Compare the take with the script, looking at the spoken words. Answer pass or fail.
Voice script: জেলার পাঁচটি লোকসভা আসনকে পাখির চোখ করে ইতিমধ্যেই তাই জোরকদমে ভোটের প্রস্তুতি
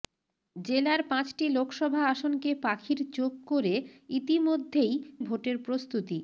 fail